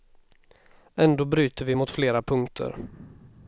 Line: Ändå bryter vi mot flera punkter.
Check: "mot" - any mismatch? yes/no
no